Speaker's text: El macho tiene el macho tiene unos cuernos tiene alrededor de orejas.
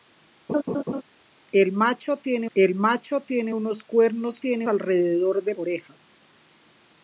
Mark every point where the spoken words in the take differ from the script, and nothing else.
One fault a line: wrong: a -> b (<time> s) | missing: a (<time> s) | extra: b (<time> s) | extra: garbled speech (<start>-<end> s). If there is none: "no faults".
no faults